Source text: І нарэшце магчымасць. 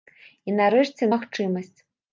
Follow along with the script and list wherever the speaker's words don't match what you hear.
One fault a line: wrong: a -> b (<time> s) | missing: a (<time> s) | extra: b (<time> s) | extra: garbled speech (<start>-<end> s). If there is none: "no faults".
no faults